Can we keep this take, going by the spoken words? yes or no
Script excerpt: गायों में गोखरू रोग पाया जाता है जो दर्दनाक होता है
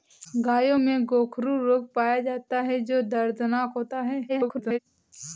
no